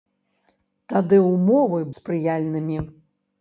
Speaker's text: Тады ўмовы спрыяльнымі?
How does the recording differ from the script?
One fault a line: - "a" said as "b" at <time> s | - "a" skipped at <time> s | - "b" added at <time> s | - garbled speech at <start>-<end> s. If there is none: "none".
none